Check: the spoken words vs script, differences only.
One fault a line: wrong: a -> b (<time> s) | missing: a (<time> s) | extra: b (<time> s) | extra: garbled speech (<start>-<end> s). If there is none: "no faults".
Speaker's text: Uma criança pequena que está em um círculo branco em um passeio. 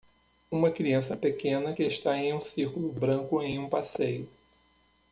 no faults